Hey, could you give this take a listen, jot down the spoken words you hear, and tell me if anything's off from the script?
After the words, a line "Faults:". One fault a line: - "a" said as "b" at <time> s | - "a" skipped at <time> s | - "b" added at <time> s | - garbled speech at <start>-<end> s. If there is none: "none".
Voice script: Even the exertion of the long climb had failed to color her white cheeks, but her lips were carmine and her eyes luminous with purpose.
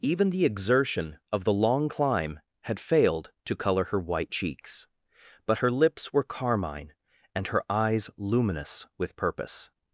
Even the exertion of the long climb had failed to color her white cheeks, but her lips were carmine and her eyes luminous with purpose.
Faults:
none